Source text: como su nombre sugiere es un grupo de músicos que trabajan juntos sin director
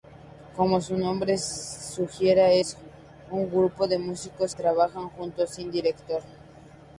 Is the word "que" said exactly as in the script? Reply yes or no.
no